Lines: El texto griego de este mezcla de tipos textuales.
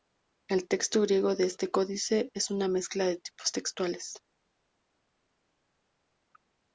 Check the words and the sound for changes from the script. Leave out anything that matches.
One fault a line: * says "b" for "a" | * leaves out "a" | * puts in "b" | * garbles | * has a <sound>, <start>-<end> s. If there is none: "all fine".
* puts in "códice es una"